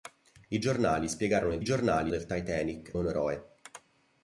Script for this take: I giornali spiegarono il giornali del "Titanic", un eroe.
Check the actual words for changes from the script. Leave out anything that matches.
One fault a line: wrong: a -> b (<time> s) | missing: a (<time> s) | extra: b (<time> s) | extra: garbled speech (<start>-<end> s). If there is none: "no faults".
no faults